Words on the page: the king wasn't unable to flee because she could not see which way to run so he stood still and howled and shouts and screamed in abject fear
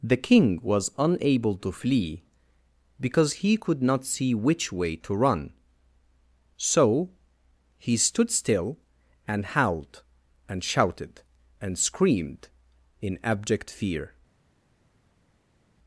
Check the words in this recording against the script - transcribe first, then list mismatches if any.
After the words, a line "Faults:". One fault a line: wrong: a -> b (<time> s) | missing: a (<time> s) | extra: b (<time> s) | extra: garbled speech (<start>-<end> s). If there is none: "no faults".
the king was unable to flee because he could not see which way to run so he stood still and howled and shouted and screamed in abject fear
Faults:
wrong: wasn't -> was (0.6 s)
wrong: she -> he (3.3 s)
wrong: shouts -> shouted (10.6 s)